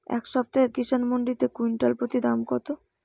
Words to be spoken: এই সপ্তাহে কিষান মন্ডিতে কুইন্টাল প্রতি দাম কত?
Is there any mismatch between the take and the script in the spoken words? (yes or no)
no